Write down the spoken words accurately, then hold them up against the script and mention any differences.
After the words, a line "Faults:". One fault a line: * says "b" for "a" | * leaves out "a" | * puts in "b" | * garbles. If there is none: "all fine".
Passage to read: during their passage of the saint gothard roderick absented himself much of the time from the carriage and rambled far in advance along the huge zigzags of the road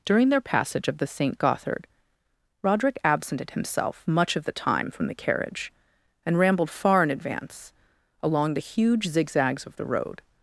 during their passage of the saint gothard roderick absented himself much of the time from the carriage and rambled far in advance along the huge zigzags of the road
Faults:
all fine